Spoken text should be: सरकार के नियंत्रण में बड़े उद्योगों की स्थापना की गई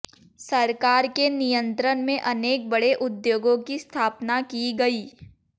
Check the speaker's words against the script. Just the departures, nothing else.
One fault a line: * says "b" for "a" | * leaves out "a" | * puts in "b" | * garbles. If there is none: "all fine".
* puts in "अनेक"